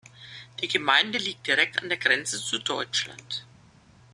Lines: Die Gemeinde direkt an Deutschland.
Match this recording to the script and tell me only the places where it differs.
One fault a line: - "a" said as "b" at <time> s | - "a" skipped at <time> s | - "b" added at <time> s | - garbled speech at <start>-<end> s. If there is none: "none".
- "liegt" added at 1.2 s
- "der Grenze zu" added at 1.9 s